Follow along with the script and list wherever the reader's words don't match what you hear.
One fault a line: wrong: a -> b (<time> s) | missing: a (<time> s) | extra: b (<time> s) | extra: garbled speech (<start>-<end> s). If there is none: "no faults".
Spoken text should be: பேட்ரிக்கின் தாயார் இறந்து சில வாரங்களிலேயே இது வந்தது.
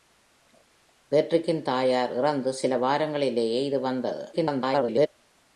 extra: garbled speech (4.3-5.1 s)